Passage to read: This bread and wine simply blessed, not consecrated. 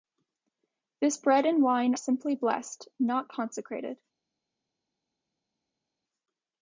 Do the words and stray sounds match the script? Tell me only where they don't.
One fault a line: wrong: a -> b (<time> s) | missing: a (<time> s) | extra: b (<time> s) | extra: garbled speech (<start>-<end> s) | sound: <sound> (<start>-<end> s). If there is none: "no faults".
no faults